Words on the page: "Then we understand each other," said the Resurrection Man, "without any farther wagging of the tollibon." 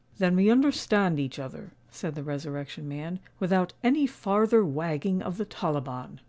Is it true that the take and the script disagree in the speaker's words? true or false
false